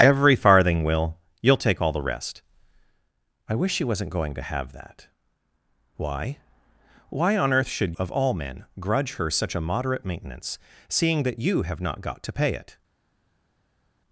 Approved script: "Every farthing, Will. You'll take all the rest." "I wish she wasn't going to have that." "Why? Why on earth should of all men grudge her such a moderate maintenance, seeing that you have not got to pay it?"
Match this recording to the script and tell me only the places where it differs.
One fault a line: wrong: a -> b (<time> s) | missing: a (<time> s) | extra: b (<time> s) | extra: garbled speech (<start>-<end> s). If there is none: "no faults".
no faults